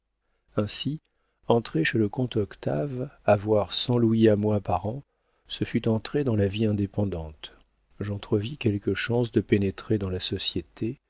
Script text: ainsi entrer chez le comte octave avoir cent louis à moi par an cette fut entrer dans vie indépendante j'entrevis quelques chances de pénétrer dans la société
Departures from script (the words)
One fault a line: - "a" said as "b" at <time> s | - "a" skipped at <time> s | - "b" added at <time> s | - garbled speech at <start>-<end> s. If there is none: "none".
- "cette" said as "ce" at 5.5 s
- "la" added at 6.4 s